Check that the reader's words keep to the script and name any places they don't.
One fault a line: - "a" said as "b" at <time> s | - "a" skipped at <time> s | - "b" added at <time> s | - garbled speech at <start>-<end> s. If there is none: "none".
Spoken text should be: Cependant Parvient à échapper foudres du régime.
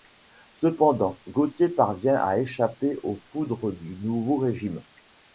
- "Gauthier" added at 1.3 s
- "aux" added at 3.0 s
- "nouveau" added at 4.0 s